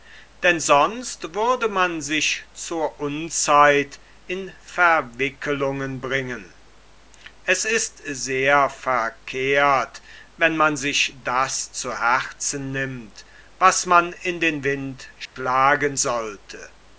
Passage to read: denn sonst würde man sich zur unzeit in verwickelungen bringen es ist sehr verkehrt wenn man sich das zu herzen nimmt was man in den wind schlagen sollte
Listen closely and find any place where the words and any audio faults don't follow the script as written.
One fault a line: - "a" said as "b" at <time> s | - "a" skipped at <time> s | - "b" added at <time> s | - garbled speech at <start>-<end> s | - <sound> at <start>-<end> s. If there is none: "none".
- dropout at 15.3-15.4 s